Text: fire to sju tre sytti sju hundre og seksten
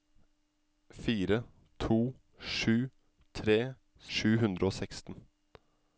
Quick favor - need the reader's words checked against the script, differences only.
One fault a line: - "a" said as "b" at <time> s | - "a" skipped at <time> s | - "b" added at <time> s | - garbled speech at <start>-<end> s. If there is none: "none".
- "sytti" skipped at 3.6 s